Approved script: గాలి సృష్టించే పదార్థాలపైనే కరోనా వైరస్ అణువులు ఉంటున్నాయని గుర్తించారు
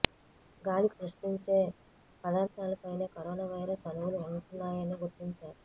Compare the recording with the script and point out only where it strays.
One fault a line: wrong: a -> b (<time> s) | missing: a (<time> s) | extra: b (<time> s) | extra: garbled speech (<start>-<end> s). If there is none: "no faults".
no faults